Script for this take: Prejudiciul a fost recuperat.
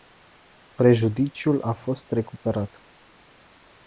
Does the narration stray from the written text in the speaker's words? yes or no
no